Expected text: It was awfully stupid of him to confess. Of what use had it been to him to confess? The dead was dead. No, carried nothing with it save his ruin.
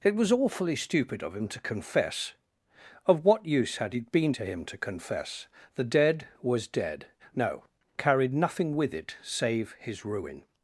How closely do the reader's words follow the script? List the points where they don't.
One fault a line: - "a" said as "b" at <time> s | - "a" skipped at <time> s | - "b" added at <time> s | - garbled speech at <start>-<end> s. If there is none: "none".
none